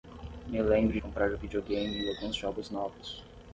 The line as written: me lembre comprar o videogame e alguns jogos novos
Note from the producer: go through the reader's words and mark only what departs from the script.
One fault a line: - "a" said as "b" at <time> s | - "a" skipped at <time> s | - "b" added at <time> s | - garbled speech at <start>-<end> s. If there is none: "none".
none